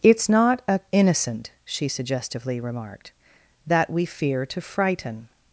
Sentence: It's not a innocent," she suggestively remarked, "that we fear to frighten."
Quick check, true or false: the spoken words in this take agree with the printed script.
true